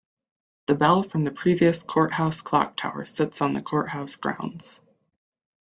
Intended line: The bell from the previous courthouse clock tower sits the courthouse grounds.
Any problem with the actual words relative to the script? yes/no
yes